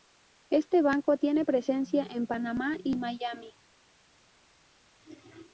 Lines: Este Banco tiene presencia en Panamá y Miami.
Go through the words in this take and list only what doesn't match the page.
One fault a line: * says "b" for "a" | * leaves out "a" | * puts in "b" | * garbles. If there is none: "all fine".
all fine